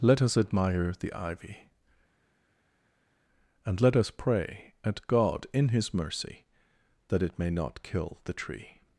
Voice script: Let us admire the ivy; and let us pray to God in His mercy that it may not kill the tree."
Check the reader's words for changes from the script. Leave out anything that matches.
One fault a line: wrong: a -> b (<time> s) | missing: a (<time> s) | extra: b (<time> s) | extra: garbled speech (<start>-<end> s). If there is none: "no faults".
wrong: to -> at (4.8 s)